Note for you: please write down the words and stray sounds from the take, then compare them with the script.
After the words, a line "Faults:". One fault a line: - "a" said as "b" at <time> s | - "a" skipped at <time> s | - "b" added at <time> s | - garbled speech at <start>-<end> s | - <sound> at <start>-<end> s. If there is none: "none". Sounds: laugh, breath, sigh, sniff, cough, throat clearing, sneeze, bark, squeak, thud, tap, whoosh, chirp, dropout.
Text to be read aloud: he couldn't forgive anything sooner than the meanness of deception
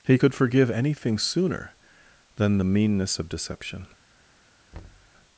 he could forgive anything sooner than the meanness of deception
Faults:
- "couldn't" said as "could" at 0.1 s
- thud at 4.7-5.1 s